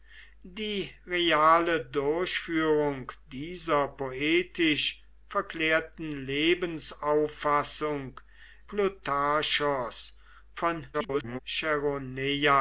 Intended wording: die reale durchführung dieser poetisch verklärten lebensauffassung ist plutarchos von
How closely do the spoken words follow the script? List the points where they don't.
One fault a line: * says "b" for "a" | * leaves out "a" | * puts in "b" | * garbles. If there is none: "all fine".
* leaves out "ist"
* garbles